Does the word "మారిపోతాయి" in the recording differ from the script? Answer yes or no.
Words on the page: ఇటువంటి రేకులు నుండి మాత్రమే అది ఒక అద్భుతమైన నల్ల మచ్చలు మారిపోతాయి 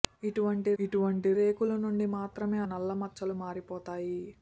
no